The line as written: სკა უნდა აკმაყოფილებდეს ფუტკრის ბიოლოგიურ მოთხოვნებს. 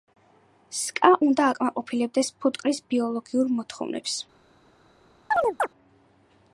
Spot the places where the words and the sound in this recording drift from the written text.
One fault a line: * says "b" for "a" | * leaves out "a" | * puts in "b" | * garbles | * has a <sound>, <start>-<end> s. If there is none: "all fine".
* has a chirp, 5.3-5.7 s